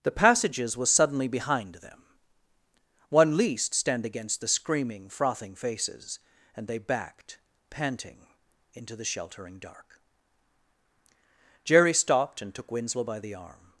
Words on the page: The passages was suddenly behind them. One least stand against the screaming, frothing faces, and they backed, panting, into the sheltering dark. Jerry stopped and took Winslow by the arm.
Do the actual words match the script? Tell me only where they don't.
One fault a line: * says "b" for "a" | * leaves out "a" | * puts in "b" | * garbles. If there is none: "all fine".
all fine